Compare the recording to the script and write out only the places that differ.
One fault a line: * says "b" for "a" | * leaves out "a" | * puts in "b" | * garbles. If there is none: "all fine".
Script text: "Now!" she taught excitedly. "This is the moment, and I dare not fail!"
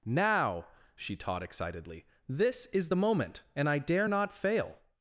all fine